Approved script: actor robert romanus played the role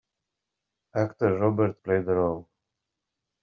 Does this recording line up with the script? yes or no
no